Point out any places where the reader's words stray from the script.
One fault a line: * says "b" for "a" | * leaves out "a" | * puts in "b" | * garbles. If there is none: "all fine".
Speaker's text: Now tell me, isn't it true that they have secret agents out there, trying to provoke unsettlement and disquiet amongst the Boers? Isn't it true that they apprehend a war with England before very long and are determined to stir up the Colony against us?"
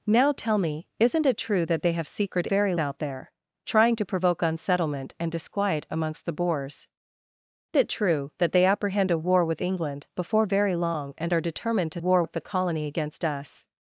* says "very" for "agents"
* leaves out "Isn't"
* says "war" for "stir"